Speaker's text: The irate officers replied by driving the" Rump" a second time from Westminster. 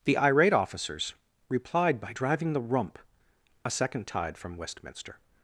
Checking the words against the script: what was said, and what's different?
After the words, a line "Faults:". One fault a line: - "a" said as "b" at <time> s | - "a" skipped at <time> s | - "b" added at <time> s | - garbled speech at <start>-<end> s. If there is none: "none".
The irate officers replied by driving the" Rump" a second tide from Westminster.
Faults:
- "time" said as "tide" at 4.1 s